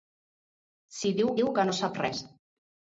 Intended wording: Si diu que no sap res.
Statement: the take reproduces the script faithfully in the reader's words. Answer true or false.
false